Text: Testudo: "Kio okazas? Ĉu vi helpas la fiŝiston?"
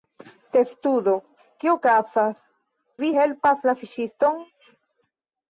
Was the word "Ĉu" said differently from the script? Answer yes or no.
yes